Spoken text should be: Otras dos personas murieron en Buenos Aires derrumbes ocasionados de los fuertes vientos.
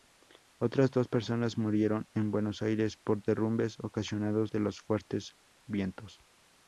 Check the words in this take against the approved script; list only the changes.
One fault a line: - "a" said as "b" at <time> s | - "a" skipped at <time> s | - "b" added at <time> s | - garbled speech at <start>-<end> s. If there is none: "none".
- "por" added at 3.0 s